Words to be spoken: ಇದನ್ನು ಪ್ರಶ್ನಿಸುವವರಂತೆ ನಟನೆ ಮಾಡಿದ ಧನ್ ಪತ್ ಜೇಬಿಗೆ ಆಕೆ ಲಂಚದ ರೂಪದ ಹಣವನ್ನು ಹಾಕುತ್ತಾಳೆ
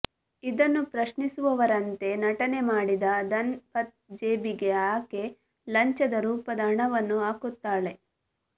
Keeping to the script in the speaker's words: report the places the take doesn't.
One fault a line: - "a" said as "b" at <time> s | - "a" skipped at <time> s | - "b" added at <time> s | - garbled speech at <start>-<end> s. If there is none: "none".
none